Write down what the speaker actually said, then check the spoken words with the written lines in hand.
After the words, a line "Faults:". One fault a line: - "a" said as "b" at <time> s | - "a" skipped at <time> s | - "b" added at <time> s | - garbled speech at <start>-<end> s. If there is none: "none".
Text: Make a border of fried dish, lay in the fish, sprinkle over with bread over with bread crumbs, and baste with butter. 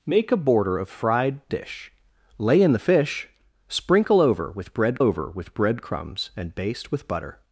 Make a border of fried dish, lay in the fish, sprinkle over with bread over with bread crumbs, and baste with butter.
Faults:
none